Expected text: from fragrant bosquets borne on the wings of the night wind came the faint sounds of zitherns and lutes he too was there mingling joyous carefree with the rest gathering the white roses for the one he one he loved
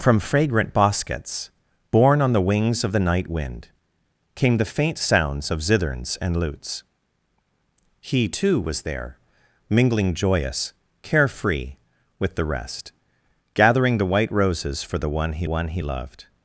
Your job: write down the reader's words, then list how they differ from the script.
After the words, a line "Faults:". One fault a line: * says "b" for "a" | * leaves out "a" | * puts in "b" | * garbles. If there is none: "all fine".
from fragrant bosquets borne on the wings of the night wind came the faint sounds of zitherns and lutes he too was there mingling joyous carefree with the rest gathering the white roses for the one he one he loved
Faults:
all fine